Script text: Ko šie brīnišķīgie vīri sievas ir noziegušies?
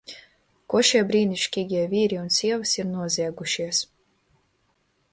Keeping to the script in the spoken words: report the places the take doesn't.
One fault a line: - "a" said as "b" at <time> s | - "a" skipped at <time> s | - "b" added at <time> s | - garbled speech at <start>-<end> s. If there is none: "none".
- "un" added at 2.2 s